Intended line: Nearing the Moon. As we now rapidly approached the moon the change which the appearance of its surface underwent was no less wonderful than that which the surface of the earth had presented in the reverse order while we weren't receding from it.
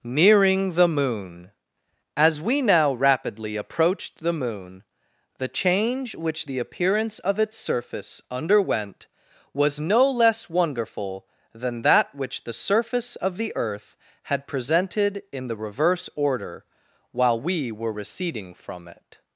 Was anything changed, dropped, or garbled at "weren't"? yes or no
yes